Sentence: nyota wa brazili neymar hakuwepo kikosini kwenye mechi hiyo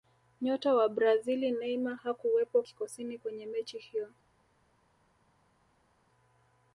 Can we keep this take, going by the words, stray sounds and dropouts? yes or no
yes